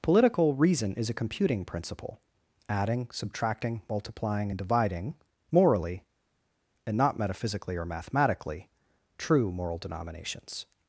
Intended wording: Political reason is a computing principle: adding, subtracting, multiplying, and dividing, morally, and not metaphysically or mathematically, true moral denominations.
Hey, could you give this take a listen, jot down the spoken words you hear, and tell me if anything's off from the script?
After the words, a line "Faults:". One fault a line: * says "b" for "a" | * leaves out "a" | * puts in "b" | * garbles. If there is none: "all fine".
Political reason is a computing principle: adding, subtracting, multiplying, and dividing, morally, and not metaphysically or mathematically, true moral denominations.
Faults:
all fine